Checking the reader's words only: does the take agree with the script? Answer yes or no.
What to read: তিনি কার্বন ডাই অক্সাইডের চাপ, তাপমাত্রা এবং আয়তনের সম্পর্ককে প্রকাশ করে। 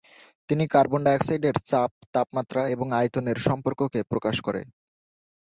yes